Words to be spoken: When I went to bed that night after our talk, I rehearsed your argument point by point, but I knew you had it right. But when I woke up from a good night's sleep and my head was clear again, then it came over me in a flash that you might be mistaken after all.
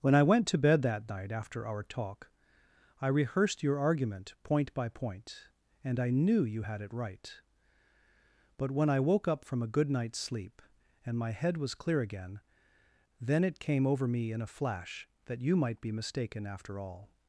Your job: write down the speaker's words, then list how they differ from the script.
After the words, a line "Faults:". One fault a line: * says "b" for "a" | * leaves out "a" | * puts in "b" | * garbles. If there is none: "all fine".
When I went to bed that night after our talk, I rehearsed your argument point by point, and I knew you had it right. But when I woke up from a good night's sleep and my head was clear again, then it came over me in a flash that you might be mistaken after all.
Faults:
* says "and" for "but"